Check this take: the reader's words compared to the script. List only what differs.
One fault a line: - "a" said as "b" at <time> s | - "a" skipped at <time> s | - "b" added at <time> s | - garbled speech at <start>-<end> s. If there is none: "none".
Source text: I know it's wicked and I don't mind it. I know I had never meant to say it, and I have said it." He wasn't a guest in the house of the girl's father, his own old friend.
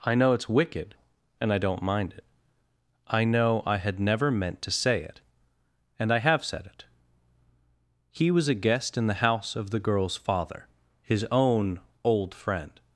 - "wasn't" said as "was" at 8.3 s